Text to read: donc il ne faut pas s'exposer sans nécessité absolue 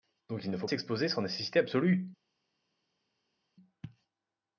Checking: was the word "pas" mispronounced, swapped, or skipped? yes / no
yes